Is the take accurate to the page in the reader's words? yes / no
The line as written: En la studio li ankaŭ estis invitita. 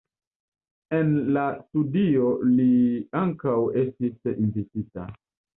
yes